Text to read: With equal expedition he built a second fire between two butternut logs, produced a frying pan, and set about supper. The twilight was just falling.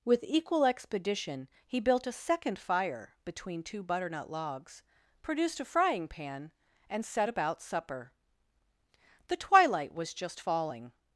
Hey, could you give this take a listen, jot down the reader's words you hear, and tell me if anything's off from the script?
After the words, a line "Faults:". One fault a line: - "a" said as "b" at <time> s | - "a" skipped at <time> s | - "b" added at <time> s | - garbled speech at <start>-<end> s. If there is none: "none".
With equal expedition he built a second fire between two butternut logs, produced a frying pan, and set about supper. The twilight was just falling.
Faults:
none